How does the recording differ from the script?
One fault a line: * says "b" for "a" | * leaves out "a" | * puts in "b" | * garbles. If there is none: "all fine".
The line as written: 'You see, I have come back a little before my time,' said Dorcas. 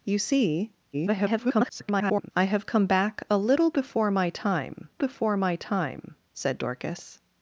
* garbles
* puts in "before my time"